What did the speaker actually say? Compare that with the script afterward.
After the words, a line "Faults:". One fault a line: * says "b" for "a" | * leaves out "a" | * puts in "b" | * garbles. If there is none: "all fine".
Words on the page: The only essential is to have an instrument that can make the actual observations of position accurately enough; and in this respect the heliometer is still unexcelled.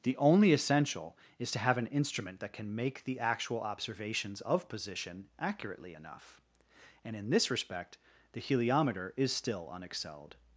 The only essential is to have an instrument that can make the actual observations of position accurately enough; and in this respect the heliometer is still unexcelled.
Faults:
all fine